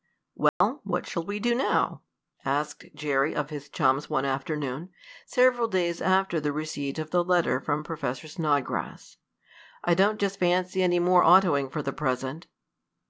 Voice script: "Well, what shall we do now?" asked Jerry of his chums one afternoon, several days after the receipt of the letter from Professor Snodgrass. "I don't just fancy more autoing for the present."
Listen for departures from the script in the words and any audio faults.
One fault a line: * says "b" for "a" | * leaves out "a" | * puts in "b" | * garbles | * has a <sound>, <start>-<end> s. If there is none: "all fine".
* has a dropout, 0.5-0.6 s
* puts in "any"